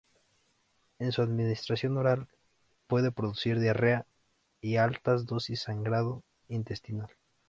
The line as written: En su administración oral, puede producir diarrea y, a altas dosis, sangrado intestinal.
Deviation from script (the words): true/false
false